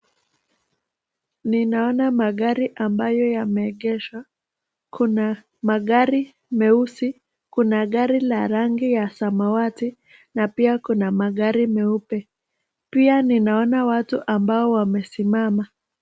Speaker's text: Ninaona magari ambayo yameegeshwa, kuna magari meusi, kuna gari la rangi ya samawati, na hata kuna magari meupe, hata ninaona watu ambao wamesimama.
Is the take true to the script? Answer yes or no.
no